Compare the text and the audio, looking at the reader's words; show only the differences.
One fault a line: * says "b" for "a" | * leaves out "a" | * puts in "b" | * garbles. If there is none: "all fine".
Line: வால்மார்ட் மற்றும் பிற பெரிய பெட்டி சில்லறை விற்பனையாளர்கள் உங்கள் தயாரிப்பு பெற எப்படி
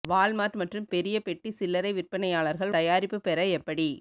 * leaves out "பிற"
* leaves out "உங்கள்"